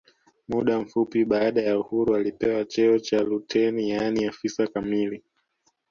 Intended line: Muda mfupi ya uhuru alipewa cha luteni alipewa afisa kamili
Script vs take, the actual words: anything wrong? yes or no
yes